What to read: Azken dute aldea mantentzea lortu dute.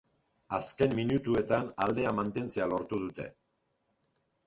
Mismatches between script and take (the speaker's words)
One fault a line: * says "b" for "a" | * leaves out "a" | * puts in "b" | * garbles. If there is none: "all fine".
* says "minutuetan" for "dute"